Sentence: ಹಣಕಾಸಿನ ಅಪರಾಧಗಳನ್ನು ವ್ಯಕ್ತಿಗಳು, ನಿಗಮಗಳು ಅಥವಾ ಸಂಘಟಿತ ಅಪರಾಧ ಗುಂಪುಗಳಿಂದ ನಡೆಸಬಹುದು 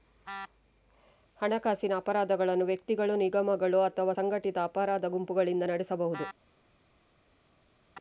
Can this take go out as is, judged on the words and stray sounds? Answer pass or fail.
pass